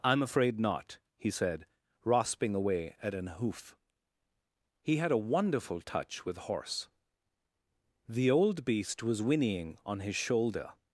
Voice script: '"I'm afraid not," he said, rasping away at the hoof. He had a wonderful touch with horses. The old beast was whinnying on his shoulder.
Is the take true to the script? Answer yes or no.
no